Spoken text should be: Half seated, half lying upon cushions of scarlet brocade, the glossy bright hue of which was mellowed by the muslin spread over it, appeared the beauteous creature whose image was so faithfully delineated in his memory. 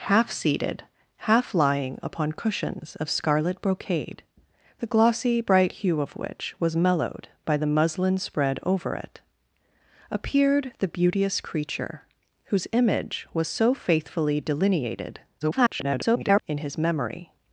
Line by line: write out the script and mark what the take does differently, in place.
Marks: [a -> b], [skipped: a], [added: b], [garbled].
Half seated, half lying upon cushions of scarlet brocade, the glossy bright hue of which was mellowed by the muslin spread over it, appeared the beauteous creature whose image was so faithfully delineated [garbled] in his memory.